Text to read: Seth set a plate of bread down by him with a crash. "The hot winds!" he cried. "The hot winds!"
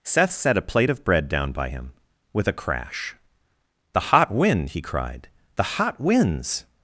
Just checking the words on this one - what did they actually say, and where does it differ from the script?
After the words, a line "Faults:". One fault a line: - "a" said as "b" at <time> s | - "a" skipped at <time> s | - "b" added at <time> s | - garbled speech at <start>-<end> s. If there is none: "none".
Seth set a plate of bread down by him with a crash. "The hot wind!" he cried. "The hot winds!"
Faults:
- "winds" said as "wind" at 4.3 s